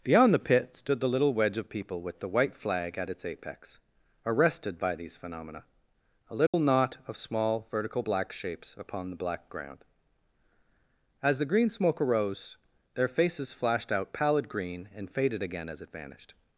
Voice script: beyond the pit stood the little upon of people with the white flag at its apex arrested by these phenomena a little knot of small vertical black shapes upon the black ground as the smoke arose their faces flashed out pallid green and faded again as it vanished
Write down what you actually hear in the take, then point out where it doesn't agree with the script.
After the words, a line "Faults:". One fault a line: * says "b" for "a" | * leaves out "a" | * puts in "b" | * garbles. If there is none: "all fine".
beyond the pit stood the little wedge of people with the white flag at its apex arrested by these phenomena a little knot of small vertical black shapes upon the black ground as the green smoke arose their faces flashed out pallid green and faded again as it vanished
Faults:
* says "wedge" for "upon"
* puts in "green"